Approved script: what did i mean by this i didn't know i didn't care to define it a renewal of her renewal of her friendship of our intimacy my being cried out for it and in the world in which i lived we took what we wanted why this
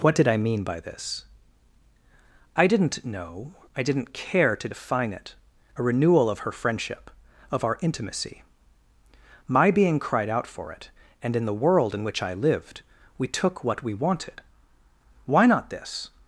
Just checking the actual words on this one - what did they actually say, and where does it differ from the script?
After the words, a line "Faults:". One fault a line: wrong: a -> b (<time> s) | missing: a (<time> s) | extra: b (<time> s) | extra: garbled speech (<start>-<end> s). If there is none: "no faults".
what did i mean by this i didn't know i didn't care to define it a renewal of her friendship of our intimacy my being cried out for it and in the world in which i lived we took what we wanted why not this
Faults:
missing: renewal of her (6.5 s)
extra: not (15.4 s)